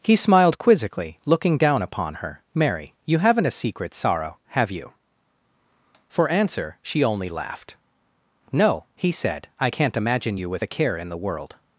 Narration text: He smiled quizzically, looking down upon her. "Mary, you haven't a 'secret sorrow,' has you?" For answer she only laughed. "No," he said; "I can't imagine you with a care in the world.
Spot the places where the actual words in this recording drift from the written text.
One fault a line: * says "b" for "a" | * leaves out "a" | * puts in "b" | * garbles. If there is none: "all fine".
* says "have" for "has"